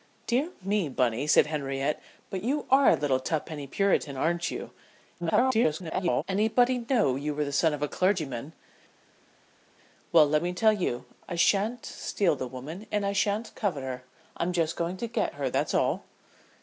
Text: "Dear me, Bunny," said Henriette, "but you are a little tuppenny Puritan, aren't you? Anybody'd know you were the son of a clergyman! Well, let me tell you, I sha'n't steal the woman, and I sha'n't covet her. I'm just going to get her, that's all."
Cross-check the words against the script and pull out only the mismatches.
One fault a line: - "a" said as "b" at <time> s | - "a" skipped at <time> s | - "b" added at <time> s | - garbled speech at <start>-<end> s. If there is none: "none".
- garbled speech at 5.2-6.2 s